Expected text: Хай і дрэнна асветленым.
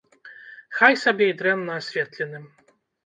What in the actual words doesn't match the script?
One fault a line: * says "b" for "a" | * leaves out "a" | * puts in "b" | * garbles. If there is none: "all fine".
* puts in "сабе"